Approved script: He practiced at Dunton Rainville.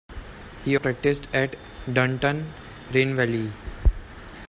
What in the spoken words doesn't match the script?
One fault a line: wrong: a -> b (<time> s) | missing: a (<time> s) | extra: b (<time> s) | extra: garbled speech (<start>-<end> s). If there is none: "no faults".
no faults